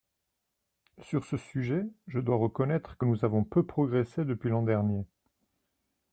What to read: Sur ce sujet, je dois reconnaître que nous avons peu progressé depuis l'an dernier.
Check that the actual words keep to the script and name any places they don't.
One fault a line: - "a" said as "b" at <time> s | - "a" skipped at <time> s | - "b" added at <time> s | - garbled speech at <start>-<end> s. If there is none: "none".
none